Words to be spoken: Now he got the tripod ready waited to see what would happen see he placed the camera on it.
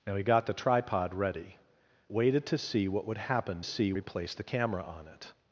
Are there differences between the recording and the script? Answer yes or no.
no